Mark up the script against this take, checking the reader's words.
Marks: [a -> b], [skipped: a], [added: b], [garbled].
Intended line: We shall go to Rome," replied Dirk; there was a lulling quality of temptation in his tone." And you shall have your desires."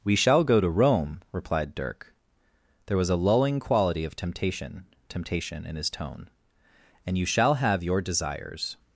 We shall go to Rome," replied Dirk; there was a lulling quality of temptation [added: temptation] in his tone." And you shall have your desires."